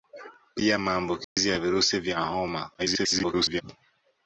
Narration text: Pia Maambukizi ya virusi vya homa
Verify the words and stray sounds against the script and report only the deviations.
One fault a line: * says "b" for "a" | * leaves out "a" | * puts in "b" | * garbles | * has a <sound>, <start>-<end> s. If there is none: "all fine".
* has a dropout, 1.2-1.4 s
* garbles